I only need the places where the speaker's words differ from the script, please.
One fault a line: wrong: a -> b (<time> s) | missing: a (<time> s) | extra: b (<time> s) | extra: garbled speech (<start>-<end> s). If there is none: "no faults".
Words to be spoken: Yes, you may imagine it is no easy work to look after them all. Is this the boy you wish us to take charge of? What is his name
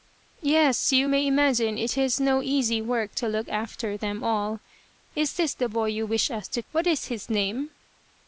missing: take charge of (6.6 s)